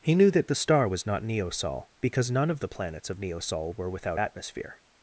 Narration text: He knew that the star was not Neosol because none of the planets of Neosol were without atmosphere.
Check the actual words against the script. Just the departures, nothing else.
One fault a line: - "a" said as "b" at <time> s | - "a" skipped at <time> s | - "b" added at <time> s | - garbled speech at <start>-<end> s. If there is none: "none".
none